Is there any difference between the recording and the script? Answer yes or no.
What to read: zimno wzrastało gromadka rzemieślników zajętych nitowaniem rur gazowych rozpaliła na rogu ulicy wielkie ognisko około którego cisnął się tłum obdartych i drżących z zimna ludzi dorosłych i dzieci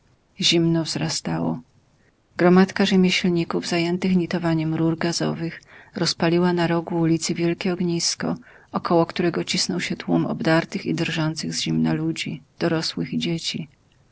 no